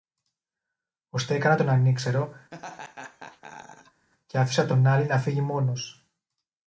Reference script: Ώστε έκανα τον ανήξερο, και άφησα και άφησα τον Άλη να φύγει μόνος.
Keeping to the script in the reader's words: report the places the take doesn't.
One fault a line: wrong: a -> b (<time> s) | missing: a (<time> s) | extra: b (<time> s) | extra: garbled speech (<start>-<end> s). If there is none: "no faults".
missing: και άφησα (4.7 s)